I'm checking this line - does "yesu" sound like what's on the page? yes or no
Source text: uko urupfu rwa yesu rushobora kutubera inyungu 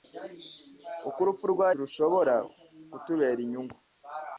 no